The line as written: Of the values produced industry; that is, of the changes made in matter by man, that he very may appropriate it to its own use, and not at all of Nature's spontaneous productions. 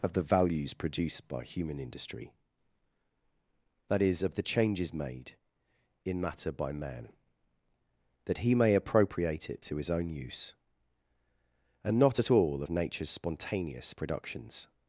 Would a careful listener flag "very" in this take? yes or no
yes